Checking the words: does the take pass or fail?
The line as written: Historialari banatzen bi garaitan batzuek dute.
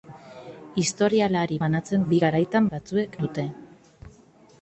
pass